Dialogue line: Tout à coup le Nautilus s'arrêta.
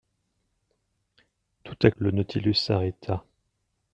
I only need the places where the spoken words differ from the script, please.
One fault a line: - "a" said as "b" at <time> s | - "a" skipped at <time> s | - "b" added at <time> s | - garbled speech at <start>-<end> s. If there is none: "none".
- "coup" skipped at 1.9 s